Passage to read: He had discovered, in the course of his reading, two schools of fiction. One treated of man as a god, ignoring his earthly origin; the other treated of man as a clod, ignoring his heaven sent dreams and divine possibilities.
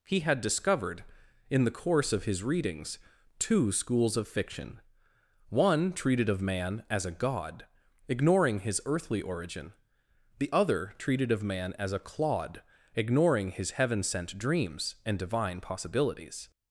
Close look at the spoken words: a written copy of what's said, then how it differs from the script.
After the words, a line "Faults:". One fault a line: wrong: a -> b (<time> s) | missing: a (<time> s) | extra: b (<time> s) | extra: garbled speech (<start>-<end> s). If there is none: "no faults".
He had discovered, in the course of his readings, two schools of fiction. One treated of man as a god, ignoring his earthly origin; the other treated of man as a clod, ignoring his heaven sent dreams and divine possibilities.
Faults:
wrong: reading -> readings (2.4 s)